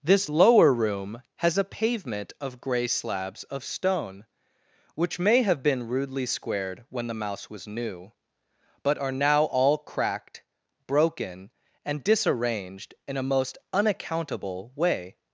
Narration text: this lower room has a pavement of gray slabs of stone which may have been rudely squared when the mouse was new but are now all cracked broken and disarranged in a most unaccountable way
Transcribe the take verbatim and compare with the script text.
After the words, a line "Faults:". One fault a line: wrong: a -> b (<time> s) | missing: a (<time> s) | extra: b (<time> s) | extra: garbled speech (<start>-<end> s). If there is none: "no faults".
this lower room has a pavement of gray slabs of stone which may have been rudely squared when the mouse was new but are now all cracked broken and disarranged in a most unaccountable way
Faults:
no faults